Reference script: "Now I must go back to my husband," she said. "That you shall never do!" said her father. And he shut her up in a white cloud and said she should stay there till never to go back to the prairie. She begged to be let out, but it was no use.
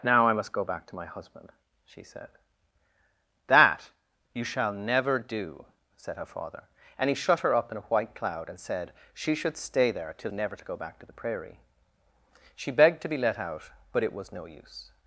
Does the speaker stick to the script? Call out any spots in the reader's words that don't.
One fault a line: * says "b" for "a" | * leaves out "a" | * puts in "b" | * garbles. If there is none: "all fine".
all fine